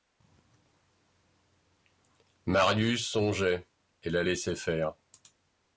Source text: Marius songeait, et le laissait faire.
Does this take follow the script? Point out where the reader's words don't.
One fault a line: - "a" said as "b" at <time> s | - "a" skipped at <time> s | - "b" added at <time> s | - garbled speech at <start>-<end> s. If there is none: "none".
- "le" said as "la" at 4.1 s